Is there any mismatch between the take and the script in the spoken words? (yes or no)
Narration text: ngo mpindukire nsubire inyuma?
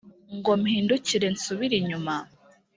no